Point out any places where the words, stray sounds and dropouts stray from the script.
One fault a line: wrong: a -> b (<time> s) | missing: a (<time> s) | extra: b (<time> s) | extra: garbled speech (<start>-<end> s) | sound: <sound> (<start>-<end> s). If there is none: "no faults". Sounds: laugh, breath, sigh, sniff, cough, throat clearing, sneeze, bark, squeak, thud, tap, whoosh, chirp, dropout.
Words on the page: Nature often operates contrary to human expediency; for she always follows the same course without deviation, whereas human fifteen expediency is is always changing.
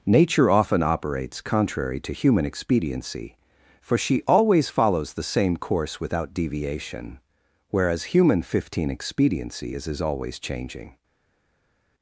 no faults